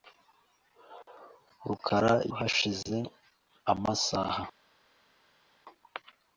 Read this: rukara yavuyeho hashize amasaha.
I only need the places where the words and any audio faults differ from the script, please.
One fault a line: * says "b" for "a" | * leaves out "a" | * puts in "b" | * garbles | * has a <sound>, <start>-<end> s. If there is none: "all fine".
* leaves out "yavuyeho"